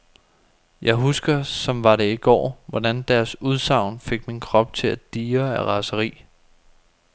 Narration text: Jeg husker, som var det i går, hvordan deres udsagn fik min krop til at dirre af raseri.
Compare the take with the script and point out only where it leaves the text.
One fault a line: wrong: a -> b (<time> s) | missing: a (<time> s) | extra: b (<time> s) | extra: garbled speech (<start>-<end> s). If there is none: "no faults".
no faults